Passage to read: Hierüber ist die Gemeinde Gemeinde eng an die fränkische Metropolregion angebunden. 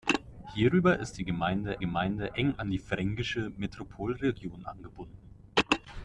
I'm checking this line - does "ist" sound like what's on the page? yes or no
yes